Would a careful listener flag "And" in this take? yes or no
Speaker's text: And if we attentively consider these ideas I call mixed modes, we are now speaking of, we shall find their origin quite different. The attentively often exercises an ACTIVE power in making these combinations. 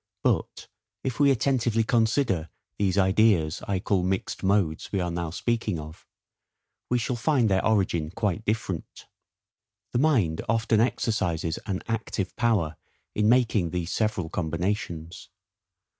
yes